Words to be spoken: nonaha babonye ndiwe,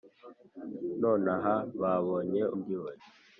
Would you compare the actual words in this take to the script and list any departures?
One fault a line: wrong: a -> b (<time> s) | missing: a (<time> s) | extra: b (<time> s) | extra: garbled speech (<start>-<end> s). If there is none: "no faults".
no faults